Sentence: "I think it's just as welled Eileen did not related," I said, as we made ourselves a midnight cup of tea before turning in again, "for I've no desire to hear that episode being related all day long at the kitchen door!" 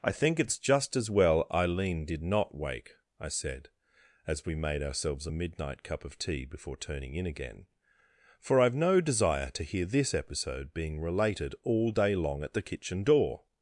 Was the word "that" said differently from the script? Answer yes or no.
yes